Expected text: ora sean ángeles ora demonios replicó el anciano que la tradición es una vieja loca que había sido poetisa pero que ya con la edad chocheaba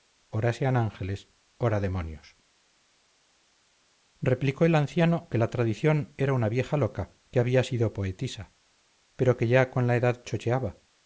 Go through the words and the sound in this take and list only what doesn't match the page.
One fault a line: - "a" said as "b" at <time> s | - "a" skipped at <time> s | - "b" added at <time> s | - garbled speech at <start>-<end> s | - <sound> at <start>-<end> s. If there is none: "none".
- "es" said as "era" at 6.2 s